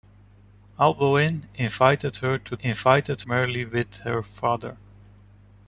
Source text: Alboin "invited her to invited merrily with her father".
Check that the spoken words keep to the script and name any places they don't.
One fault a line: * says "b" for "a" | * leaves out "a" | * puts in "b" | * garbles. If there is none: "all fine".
all fine